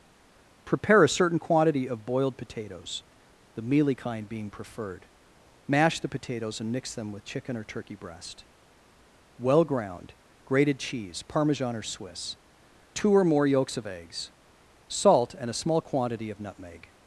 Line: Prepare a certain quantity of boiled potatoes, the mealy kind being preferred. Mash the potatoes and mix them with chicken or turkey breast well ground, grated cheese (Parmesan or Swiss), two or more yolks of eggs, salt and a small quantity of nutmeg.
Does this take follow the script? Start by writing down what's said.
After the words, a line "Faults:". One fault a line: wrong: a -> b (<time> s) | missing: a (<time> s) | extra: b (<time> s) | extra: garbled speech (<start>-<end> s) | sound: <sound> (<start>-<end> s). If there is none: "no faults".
Prepare a certain quantity of boiled potatoes, the mealy kind being preferred. Mash the potatoes and mix them with chicken or turkey breast well ground, grated cheese (Parmesan or Swiss), two or more yolks of eggs, salt and a small quantity of nutmeg.
Faults:
no faults